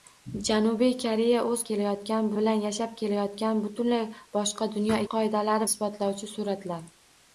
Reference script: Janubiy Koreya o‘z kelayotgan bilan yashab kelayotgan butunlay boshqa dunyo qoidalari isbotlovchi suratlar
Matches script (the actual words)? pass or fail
pass